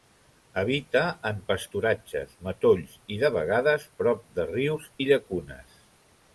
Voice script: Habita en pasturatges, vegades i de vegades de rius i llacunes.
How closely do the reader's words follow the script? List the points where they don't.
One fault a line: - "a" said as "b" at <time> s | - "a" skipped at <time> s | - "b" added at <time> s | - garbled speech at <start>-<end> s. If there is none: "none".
- "vegades" said as "matolls" at 2.5 s
- "prop" added at 4.0 s